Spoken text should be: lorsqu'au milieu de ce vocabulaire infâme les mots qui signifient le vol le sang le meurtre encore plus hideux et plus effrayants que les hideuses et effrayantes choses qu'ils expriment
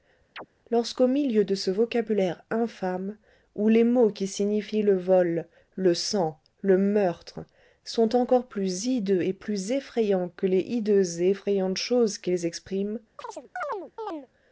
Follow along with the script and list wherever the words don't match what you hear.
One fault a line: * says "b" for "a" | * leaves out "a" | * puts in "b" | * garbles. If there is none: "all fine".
* puts in "où"
* puts in "sont"